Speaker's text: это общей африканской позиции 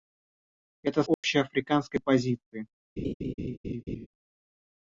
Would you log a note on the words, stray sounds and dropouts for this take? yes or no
yes